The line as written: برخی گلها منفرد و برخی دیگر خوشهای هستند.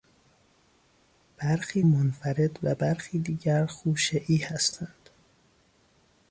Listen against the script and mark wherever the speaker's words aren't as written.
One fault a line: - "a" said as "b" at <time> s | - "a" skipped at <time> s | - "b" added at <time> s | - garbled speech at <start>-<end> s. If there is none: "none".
- "گلها" skipped at 1.8 s